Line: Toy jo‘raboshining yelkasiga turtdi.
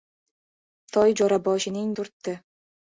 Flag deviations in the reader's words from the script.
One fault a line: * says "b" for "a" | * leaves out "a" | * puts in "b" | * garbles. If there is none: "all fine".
* leaves out "yelkasiga"